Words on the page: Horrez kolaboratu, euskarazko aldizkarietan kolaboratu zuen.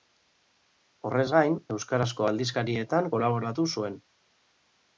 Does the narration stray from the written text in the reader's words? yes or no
yes